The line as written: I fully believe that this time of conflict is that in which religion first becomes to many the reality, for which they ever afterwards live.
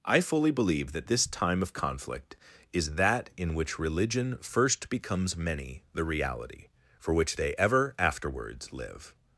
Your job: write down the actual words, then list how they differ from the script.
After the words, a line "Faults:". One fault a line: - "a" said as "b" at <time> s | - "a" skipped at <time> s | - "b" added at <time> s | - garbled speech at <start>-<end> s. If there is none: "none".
I fully believe that this time of conflict is that in which religion first becomes many the reality, for which they ever afterwards live.
Faults:
- "to" skipped at 5.4 s